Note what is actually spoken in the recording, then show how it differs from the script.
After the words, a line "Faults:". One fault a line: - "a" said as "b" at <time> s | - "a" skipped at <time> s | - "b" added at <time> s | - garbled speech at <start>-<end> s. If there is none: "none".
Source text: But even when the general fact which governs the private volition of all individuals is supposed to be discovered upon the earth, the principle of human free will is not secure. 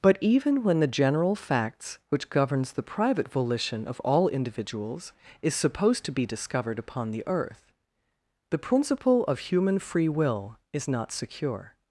But even when the general facts which governs the private volition of all individuals is supposed to be discovered upon the earth, the principle of human free will is not secure.
Faults:
- "fact" said as "facts" at 1.4 s